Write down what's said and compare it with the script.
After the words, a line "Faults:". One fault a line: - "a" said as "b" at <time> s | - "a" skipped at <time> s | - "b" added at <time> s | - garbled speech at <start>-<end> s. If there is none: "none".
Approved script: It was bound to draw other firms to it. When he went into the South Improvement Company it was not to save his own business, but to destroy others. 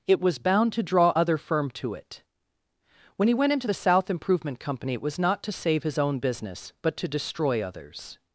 It was bound to draw other firm to it. When he went into the South Improvement Company it was not to save his own business, but to destroy others.
Faults:
- "firms" said as "firm" at 1.4 s